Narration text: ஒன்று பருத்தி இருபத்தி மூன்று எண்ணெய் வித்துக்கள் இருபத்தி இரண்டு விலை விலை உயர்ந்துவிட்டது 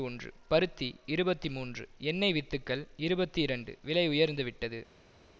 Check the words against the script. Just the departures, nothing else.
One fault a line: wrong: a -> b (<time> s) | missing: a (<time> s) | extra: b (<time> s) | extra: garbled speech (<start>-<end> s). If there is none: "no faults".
missing: விலை (4.0 s)